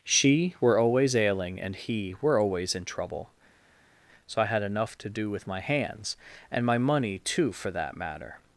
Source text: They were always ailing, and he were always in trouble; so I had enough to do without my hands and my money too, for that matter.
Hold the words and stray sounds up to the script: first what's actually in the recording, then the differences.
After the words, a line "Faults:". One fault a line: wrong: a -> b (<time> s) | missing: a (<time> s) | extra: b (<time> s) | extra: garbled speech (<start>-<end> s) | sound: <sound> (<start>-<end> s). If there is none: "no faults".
She were always ailing, and he were always in trouble; so I had enough to do with my hands and my money too, for that matter.
Faults:
wrong: They -> She (0.0 s)
wrong: without -> with (5.3 s)